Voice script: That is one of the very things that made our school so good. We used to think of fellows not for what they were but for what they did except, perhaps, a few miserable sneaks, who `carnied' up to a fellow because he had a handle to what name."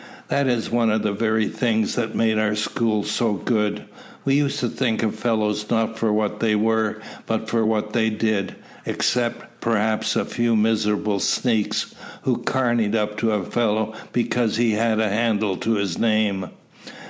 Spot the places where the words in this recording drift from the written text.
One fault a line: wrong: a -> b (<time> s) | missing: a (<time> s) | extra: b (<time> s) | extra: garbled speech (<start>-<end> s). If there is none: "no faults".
wrong: what -> his (15.7 s)